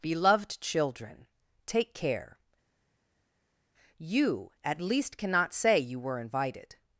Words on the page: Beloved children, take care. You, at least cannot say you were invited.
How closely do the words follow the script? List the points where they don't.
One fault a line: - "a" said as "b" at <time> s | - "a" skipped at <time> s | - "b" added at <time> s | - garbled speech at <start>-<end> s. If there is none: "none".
none